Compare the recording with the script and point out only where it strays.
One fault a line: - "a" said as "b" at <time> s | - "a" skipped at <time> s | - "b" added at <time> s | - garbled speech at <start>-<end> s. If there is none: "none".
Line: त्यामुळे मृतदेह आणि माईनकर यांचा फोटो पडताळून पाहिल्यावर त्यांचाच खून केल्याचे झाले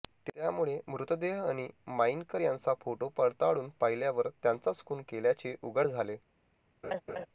- "उघड" added at 5.6 s